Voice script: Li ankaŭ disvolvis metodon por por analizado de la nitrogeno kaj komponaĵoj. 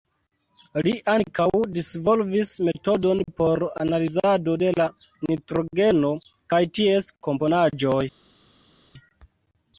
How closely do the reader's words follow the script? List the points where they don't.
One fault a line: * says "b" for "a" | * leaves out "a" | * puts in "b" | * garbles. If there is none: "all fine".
* leaves out "por"
* puts in "ties"